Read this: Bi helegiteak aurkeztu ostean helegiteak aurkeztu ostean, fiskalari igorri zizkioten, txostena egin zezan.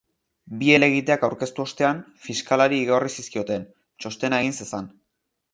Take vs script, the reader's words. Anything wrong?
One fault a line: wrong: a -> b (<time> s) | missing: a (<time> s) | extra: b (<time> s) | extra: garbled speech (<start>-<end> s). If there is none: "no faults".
missing: helegiteak aurkeztu ostean (2.0 s)